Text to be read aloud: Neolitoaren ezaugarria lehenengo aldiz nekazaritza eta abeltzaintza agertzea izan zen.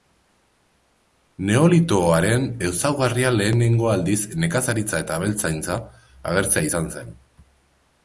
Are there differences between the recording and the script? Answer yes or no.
no